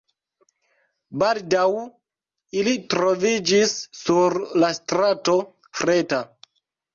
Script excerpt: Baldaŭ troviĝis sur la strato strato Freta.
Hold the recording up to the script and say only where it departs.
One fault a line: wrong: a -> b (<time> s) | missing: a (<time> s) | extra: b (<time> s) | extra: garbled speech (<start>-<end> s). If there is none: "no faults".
extra: ili (2.6 s)
missing: strato (5.4 s)